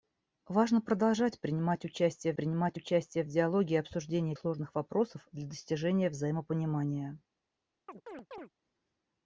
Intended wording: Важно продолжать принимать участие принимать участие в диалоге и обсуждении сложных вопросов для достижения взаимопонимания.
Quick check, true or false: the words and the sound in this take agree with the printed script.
false